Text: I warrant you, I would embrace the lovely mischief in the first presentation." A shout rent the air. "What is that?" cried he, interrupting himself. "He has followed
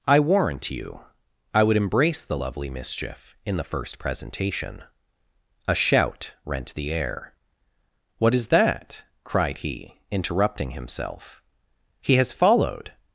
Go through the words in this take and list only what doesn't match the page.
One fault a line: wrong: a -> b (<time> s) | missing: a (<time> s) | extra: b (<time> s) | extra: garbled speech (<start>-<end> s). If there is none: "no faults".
no faults